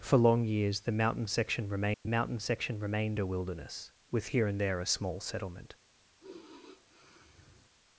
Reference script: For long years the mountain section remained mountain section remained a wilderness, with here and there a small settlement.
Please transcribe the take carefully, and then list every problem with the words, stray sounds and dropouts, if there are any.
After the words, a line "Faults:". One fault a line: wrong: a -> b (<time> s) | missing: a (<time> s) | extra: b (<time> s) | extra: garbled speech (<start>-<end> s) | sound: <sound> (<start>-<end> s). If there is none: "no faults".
For long years the mountain section remained mountain section remained a wilderness, with here and there a small settlement.
Faults:
sound: dropout (1.9-2.1 s)
sound: sigh (6.2-7.7 s)